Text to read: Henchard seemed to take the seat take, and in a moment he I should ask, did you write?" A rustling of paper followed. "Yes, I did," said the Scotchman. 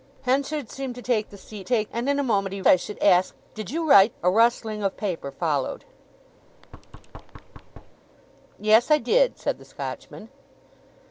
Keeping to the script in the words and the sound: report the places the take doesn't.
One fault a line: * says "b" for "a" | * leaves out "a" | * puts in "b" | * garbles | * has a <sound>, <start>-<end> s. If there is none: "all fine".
* has a thud, 6.5-8.0 s